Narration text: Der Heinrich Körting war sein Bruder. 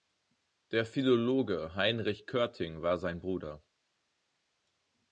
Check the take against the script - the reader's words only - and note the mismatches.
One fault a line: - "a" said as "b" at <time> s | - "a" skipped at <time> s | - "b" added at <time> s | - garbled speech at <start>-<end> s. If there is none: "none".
- "Philologe" added at 0.9 s